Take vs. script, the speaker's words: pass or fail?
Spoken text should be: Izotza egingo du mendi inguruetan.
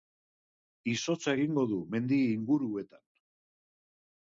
pass